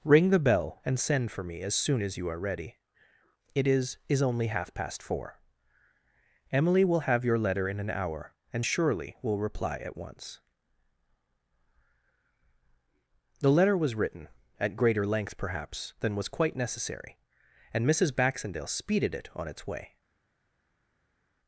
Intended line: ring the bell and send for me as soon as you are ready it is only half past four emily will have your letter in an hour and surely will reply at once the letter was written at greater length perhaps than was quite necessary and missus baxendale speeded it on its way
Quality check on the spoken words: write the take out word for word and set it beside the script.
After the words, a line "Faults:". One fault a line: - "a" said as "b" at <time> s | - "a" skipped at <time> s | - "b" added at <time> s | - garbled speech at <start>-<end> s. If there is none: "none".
ring the bell and send for me as soon as you are ready it is is only half past four emily will have your letter in an hour and surely will reply at once the letter was written at greater length perhaps than was quite necessary and missus baxendale speeded it on its way
Faults:
- "is" added at 4.1 s